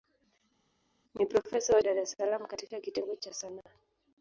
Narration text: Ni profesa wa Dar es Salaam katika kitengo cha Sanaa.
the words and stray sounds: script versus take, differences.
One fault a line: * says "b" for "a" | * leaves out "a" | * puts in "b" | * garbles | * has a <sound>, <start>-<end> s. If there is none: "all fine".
all fine